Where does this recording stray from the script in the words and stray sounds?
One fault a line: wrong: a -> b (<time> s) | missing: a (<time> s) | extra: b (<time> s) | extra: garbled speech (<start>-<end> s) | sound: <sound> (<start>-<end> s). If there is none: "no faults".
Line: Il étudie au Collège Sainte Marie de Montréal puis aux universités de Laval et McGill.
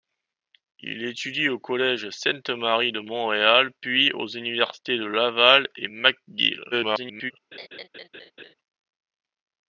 extra: garbled speech (6.7-7.3 s)
sound: laugh (7.5-8.5 s)